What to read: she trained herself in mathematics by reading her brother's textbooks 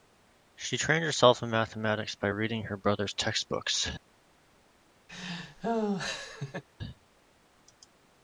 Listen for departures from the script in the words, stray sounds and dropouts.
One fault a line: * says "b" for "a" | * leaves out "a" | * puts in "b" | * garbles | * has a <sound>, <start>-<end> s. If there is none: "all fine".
* has a laugh, 5.1-6.6 s